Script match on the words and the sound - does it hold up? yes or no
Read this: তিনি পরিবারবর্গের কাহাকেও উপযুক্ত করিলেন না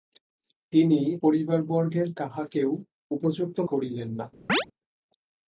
no